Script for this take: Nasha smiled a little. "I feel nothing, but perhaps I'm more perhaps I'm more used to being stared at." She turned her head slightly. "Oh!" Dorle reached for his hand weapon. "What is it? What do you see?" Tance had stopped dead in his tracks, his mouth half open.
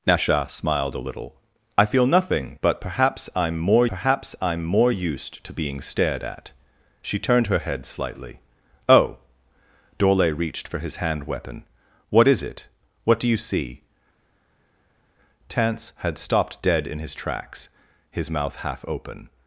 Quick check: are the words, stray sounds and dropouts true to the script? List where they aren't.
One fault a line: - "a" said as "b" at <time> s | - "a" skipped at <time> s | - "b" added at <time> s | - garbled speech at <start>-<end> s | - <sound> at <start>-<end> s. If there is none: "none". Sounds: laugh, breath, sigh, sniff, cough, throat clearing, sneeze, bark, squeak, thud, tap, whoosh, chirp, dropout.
none